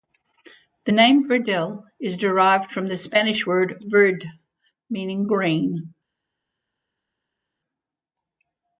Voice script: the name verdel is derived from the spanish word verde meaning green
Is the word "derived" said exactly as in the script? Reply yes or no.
yes